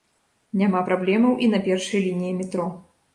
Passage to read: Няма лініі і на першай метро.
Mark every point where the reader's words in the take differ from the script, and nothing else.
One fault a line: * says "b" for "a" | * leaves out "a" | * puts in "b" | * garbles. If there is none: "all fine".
* says "праблемаў" for "лініі"
* puts in "лініі"